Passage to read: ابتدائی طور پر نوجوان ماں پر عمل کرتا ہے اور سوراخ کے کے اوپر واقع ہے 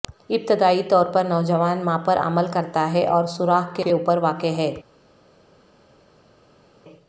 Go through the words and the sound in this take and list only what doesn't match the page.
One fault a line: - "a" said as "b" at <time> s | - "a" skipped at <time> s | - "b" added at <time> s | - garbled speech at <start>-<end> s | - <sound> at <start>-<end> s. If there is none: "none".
none